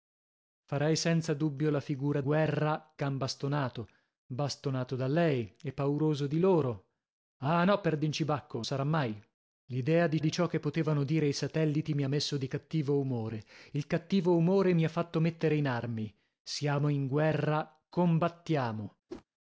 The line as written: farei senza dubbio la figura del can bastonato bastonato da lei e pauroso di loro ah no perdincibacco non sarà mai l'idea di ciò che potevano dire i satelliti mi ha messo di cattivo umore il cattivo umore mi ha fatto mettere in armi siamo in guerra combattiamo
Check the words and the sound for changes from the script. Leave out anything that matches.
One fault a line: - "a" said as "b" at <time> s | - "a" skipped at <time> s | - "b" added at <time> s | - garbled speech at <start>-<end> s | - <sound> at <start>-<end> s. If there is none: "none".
- "del" said as "guerra" at 2.2 s
- "non" skipped at 8.6 s
- "di" added at 10.2 s
- whoosh at 19.1-19.3 s